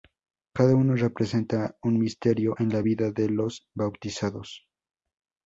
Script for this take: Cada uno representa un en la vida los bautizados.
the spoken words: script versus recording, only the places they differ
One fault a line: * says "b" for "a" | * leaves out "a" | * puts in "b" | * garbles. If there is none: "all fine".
* puts in "misterio"
* puts in "de"